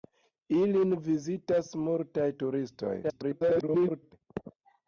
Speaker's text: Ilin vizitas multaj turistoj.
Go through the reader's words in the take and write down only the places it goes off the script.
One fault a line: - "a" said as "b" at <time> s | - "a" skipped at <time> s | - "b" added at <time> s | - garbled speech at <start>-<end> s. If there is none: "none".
- garbled speech at 3.0-4.1 s